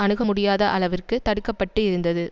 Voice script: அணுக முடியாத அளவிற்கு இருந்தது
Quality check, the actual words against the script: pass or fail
fail